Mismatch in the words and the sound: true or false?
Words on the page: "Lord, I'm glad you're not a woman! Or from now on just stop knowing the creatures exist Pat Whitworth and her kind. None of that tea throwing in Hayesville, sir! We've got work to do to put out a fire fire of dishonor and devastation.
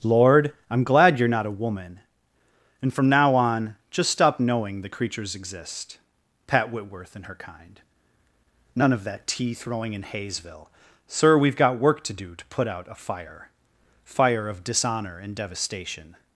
true